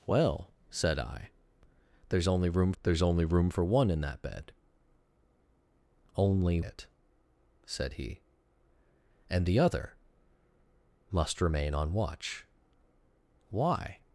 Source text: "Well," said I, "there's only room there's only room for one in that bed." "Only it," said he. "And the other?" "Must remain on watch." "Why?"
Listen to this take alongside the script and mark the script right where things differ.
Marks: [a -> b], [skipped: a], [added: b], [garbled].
"Well," said I, "there's only room there's only room for one in that bed." "Only it," said he. "And the other?" "Must remain on watch." "Why?"